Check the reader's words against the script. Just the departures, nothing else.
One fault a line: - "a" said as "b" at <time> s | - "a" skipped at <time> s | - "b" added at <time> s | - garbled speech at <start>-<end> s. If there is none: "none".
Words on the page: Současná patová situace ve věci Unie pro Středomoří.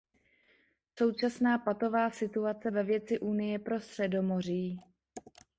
none